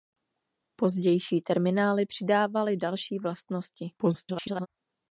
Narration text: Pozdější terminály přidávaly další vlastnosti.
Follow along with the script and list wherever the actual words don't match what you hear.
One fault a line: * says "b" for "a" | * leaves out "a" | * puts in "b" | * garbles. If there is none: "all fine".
* garbles